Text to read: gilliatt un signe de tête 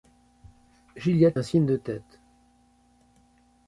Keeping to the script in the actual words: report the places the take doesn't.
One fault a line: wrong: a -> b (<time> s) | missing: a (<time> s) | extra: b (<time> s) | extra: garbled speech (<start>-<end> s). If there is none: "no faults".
no faults